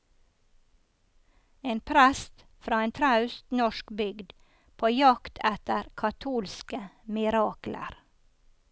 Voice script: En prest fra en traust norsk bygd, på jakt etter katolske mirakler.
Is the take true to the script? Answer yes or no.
yes